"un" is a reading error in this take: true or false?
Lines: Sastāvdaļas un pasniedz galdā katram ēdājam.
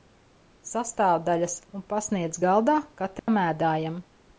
false